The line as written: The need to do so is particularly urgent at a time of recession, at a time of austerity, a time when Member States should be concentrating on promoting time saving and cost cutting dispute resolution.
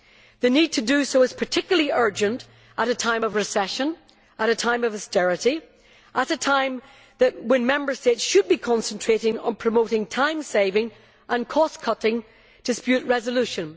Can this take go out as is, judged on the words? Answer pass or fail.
fail